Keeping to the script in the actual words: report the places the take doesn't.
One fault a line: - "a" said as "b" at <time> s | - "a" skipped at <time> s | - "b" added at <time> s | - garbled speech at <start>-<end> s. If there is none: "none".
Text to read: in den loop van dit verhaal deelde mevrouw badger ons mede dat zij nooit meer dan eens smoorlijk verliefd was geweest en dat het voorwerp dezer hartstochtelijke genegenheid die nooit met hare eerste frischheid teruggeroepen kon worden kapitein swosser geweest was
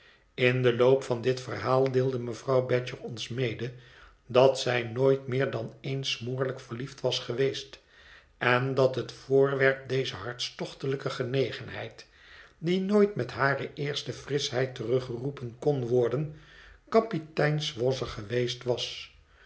none